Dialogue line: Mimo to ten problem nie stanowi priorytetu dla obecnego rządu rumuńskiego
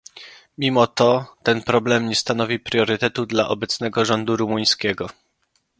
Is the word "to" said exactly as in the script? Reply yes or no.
yes